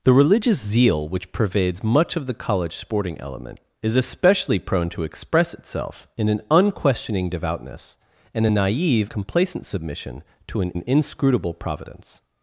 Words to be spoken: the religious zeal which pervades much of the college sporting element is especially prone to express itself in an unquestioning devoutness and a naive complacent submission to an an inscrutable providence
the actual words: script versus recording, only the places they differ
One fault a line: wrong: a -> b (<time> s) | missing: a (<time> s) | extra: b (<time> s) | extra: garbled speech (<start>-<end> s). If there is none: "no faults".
no faults